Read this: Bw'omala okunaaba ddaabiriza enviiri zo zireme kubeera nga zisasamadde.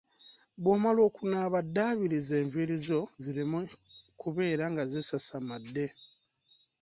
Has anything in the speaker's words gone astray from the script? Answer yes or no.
no